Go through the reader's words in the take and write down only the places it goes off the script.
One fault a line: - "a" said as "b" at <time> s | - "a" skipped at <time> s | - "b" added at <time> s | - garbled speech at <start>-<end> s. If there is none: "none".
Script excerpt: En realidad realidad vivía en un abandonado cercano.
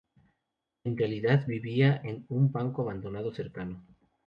- "realidad" skipped at 1.5 s
- "banco" added at 2.5 s